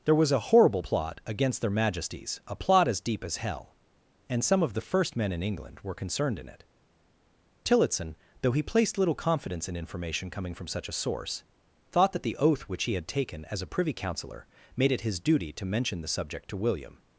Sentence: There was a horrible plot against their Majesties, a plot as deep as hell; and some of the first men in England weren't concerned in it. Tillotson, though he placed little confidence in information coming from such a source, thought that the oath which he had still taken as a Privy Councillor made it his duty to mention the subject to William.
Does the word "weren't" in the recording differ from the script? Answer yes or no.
yes